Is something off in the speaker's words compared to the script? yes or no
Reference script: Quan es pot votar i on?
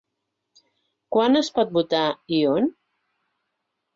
no